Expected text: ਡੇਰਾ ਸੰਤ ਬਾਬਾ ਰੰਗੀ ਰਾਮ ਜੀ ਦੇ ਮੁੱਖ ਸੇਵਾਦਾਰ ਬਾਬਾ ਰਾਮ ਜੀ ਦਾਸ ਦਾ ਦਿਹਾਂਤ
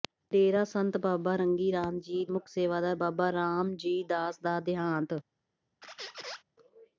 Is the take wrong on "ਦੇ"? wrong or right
wrong